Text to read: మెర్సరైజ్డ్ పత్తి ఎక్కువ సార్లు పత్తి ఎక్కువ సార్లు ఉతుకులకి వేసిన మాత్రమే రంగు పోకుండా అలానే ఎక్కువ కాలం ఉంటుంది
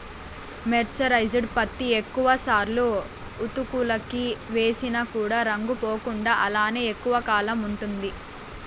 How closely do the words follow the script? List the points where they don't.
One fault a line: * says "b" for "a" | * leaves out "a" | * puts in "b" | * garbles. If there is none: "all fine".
* leaves out "పత్తి ఎక్కువ సార్లు"
* says "కూడా" for "మాత్రమే"